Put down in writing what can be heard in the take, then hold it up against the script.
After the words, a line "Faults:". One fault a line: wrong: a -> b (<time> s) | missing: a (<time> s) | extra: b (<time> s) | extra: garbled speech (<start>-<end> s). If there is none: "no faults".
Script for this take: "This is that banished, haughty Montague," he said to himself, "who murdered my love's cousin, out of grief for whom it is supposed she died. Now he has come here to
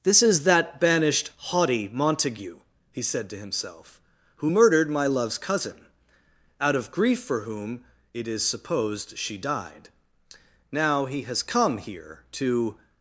"This is that banished, haughty Montague," he said to himself, "who murdered my love's cousin, out of grief for whom it is supposed she died. Now he has come here to
Faults:
no faults